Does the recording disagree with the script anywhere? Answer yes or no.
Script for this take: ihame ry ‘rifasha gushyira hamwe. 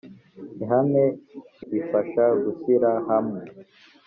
no